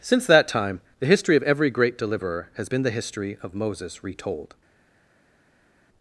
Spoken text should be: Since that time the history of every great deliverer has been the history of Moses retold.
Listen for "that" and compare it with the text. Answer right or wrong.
right